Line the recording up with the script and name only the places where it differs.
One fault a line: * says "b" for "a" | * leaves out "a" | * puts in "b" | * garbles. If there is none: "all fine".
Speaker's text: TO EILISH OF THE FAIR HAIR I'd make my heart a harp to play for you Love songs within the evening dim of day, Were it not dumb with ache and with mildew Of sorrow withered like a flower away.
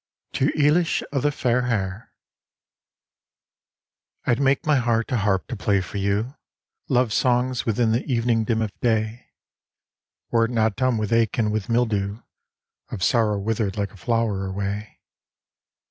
all fine